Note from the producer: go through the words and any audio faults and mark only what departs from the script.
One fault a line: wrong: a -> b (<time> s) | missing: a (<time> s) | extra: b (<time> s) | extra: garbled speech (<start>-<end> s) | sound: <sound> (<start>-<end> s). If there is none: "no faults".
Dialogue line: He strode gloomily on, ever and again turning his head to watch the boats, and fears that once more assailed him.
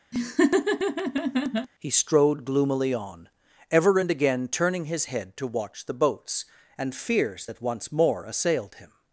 sound: laugh (0.1-1.7 s)